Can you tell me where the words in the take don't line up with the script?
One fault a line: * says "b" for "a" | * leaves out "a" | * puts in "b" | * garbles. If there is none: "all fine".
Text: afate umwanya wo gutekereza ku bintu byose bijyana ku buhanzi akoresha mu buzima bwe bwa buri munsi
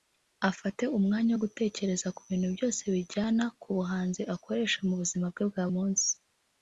* leaves out "buri"